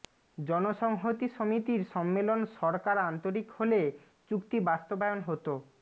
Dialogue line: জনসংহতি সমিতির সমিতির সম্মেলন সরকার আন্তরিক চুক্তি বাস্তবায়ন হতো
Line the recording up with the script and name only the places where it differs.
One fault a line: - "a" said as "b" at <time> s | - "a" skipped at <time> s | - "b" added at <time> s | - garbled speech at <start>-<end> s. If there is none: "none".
- "সমিতির" skipped at 1.8 s
- "হলে" added at 3.6 s